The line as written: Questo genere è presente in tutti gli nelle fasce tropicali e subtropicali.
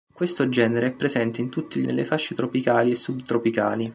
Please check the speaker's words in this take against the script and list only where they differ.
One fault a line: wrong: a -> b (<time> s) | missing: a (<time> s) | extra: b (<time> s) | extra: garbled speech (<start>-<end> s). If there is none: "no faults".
no faults